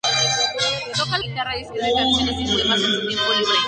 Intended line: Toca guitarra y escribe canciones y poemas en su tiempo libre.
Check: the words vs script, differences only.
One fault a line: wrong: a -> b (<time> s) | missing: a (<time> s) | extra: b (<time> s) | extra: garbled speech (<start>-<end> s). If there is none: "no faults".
no faults